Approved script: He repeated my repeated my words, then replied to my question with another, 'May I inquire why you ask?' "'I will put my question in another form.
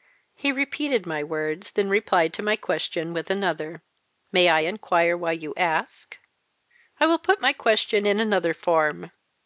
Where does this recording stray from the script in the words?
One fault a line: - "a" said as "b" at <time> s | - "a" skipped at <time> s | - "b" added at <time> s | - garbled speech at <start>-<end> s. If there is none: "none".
- "repeated my" skipped at 1.2 s